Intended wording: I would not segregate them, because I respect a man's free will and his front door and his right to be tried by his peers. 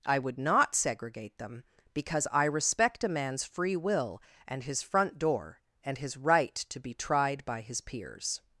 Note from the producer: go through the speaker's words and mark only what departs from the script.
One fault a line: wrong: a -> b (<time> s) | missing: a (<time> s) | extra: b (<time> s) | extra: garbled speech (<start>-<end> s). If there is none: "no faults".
no faults